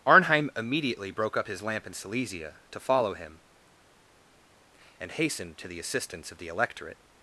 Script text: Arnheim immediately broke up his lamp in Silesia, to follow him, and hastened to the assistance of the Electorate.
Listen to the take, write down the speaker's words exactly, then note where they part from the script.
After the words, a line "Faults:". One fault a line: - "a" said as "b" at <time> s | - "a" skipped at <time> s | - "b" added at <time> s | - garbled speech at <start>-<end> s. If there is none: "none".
Arnheim immediately broke up his lamp in Silesia, to follow him, and hastened to the assistance of the Electorate.
Faults:
none